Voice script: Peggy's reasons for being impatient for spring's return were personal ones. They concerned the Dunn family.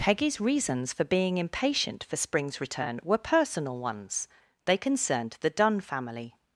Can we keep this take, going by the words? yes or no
yes